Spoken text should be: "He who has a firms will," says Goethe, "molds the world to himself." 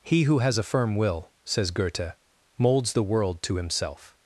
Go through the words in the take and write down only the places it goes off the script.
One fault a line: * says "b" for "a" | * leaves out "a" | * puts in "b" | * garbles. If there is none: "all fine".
* says "firm" for "firms"